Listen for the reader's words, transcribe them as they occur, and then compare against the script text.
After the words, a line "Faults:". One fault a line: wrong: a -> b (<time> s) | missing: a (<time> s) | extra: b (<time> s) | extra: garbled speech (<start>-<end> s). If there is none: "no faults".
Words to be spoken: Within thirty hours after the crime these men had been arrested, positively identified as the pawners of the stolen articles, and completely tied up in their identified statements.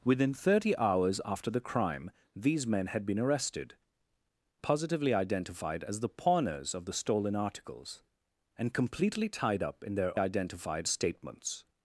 Within thirty hours after the crime these men had been arrested, positively identified as the pawners of the stolen articles, and completely tied up in their identified statements.
Faults:
no faults